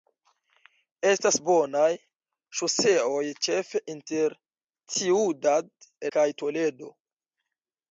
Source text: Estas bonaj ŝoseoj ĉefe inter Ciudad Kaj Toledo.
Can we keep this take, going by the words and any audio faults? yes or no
yes